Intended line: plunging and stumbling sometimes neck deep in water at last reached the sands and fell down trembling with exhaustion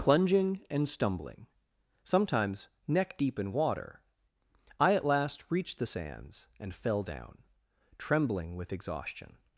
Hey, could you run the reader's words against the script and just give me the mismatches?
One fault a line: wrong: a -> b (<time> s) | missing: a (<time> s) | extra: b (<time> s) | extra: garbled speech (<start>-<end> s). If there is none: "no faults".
extra: i (4.8 s)